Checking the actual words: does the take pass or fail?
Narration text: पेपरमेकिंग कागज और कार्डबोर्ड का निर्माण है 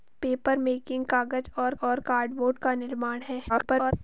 fail